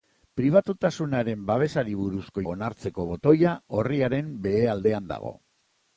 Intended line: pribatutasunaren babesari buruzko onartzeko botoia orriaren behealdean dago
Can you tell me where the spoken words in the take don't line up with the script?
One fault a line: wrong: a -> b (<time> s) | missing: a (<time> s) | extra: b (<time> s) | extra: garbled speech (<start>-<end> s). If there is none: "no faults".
no faults